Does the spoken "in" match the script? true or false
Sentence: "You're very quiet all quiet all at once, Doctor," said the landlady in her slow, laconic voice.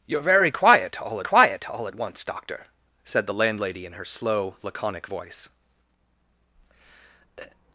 true